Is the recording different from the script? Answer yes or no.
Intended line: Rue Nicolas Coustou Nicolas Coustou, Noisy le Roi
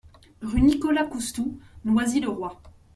yes